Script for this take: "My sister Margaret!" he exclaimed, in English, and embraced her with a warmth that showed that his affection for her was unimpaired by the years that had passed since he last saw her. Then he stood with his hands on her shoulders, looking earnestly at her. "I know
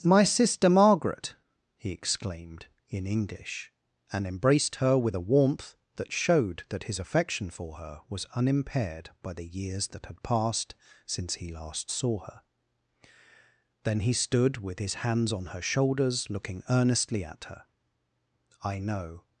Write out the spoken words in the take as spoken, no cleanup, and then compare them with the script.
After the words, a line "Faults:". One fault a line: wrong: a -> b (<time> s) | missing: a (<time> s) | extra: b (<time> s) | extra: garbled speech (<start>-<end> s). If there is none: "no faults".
"My sister Margaret!" he exclaimed, in English, and embraced her with a warmth that showed that his affection for her was unimpaired by the years that had passed since he last saw her. Then he stood with his hands on her shoulders, looking earnestly at her. "I know
Faults:
no faults